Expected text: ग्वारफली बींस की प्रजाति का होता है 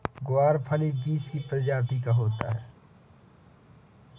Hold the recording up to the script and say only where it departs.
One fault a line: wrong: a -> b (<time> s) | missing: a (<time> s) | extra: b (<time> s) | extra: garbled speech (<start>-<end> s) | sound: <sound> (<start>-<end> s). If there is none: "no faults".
no faults